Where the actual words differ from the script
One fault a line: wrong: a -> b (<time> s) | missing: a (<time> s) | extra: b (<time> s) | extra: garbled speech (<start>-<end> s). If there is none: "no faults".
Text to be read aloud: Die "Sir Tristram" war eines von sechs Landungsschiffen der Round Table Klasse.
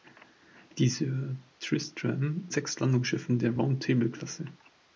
missing: war eines von (2.5 s)